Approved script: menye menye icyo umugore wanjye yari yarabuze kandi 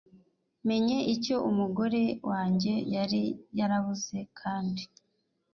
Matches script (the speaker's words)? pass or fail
fail